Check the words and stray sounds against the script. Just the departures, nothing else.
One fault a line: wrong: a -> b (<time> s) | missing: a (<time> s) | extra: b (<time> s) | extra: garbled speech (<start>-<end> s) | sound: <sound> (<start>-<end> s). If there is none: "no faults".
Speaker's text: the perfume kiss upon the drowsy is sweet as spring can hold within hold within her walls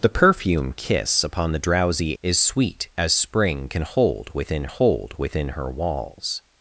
no faults